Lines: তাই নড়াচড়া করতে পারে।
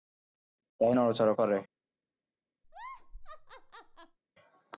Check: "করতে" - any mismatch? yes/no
yes